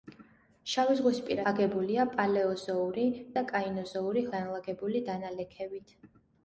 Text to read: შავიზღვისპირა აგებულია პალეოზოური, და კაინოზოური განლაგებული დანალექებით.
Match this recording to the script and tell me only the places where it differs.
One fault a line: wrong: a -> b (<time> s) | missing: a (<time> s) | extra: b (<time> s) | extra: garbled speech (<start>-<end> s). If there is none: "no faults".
no faults